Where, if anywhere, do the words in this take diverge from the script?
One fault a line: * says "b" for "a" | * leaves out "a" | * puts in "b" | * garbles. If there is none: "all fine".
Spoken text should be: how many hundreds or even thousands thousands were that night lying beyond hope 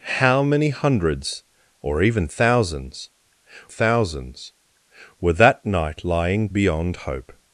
all fine